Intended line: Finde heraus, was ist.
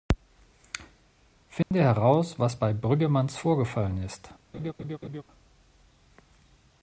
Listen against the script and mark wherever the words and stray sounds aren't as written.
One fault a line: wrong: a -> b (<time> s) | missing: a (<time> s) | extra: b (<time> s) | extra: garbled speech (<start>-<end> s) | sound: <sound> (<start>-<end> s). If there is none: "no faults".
sound: dropout (1.6-1.7 s)
extra: bei Brüggemanns vorgefallen (2.5 s)
sound: laugh (4.5-5.2 s)